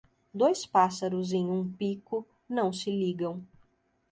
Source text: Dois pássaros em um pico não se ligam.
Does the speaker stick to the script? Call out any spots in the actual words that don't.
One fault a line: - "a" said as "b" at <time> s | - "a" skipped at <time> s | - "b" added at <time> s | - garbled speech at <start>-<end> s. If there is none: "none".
none